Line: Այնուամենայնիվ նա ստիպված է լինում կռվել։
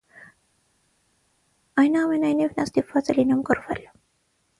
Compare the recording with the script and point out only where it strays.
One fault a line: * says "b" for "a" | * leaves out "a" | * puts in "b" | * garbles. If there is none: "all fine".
all fine